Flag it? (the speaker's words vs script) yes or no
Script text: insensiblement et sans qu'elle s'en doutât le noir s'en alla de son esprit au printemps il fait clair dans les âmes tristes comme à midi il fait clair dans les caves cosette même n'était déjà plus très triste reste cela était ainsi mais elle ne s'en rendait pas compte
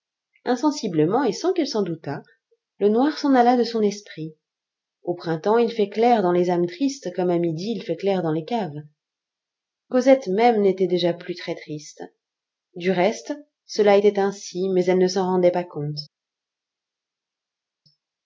yes